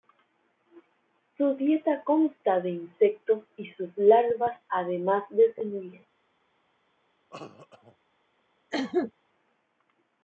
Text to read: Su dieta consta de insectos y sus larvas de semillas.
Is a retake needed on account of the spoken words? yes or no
yes